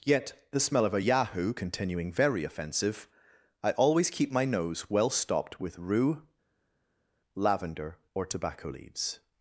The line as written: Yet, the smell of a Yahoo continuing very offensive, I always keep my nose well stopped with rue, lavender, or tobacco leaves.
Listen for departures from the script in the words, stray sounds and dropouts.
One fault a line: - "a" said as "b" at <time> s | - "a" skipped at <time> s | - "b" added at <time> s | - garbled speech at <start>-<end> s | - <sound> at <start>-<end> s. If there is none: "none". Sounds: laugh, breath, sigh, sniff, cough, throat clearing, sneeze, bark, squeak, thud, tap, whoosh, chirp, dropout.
none